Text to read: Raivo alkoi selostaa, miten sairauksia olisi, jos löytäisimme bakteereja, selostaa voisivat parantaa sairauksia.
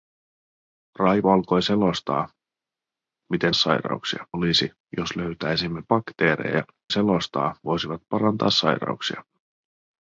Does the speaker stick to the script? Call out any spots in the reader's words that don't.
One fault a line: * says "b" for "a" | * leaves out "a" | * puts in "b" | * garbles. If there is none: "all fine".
all fine